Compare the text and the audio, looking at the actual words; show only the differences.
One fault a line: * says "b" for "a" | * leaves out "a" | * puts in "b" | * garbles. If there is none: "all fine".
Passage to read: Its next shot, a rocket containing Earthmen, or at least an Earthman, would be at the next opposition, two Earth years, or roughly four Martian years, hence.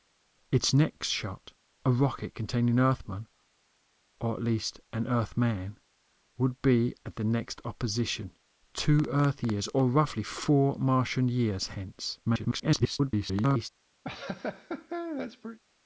* garbles